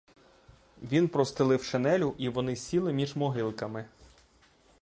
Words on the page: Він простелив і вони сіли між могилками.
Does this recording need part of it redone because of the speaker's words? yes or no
yes